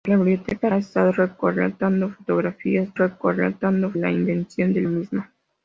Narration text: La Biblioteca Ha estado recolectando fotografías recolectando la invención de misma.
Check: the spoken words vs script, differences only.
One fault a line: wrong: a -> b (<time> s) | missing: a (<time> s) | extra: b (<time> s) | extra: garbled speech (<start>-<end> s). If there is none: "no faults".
no faults